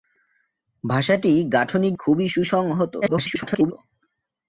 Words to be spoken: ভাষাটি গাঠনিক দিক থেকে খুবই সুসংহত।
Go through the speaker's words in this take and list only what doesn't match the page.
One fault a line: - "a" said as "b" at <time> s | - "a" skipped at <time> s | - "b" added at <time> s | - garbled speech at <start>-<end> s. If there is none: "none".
- "দিক থেকে" skipped at 1.9 s
- garbled speech at 3.0-3.7 s